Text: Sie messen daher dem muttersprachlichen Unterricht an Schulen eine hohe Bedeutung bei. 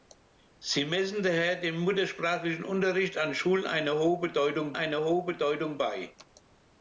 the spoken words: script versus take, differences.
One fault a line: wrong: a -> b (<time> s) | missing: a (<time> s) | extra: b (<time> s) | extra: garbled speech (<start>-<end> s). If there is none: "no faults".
extra: eine hohe Bedeutung (4.7 s)